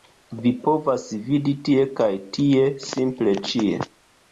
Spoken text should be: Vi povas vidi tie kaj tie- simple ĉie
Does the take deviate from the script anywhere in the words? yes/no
no